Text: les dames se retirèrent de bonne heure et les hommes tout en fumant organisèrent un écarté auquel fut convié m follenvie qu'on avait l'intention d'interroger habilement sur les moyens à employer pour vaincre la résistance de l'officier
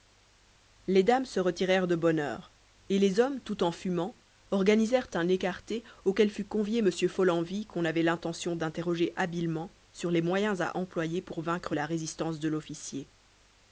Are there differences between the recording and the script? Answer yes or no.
no